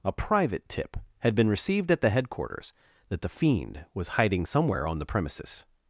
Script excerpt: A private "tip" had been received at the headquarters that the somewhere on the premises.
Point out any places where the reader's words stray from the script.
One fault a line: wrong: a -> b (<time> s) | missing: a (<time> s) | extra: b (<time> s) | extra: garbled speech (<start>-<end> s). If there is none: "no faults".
extra: fiend was hiding (3.3 s)